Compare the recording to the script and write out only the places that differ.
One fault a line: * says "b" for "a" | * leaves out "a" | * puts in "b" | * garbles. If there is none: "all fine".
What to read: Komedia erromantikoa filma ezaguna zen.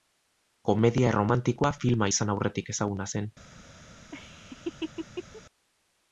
* puts in "izan aurretik"